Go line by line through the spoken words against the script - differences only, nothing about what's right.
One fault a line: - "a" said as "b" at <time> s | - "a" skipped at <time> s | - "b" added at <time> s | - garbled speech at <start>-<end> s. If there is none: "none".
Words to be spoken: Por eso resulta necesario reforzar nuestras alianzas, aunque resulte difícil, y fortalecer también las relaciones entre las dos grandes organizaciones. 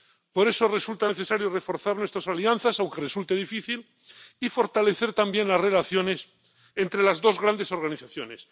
none